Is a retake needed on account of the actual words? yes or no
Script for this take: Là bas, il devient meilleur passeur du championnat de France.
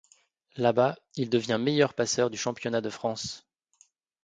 no